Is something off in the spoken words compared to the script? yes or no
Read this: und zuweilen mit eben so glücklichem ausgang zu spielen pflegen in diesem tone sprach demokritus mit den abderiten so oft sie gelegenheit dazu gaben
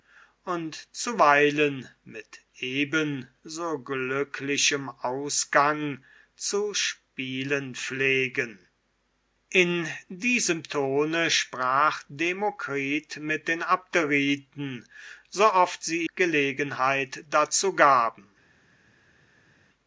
no